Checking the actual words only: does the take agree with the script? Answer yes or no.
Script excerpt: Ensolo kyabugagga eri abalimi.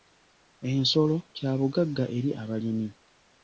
yes